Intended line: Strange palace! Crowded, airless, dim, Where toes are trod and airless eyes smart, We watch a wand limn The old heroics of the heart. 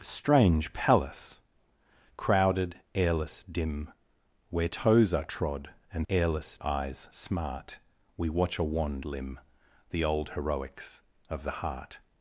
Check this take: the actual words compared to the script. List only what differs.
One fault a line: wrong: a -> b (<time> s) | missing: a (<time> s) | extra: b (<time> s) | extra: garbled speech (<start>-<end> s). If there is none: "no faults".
no faults